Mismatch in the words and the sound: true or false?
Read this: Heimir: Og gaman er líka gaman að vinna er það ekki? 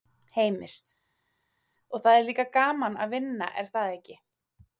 true